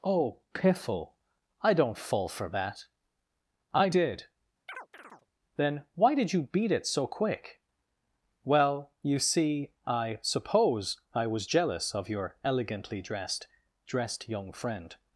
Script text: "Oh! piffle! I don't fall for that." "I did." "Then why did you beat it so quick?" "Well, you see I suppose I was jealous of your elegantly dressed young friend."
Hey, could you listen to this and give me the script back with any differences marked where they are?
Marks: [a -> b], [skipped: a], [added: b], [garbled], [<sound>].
"Oh! piffle! I don't fall for that." "I did." [chirp] "Then why did you beat it so quick?" "Well, you see I suppose I was jealous of your elegantly dressed [added: dressed] young friend."